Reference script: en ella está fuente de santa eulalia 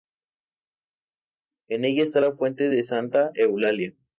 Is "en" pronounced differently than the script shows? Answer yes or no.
no